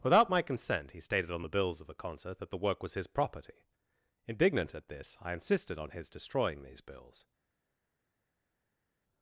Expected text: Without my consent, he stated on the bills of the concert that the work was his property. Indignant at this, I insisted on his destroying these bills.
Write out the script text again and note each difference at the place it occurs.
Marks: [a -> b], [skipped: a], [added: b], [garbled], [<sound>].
Without my consent, he stated on the bills of the concert that the work was his property. Indignant at this, I insisted on his destroying these bills.